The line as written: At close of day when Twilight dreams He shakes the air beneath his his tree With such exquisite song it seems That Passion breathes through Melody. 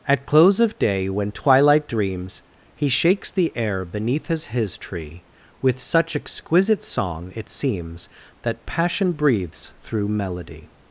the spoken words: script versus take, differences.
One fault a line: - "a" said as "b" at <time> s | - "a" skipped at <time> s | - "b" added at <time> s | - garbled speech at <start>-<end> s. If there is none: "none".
none